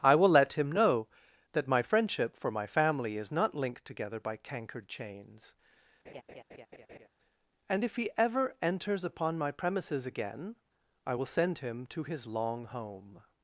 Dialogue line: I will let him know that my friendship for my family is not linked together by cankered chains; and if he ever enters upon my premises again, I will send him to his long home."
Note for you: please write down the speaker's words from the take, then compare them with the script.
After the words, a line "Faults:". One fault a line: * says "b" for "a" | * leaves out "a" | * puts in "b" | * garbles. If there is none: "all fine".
I will let him know that my friendship for my family is not linked together by cankered chains; and if he ever enters upon my premises again, I will send him to his long home."
Faults:
all fine